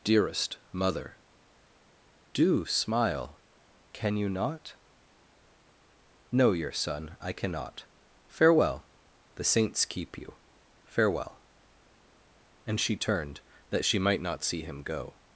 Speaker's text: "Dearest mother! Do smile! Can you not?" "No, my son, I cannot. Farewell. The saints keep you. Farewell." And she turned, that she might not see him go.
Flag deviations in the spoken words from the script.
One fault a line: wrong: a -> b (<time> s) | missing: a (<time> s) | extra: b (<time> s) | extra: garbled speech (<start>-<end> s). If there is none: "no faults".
wrong: my -> your (6.5 s)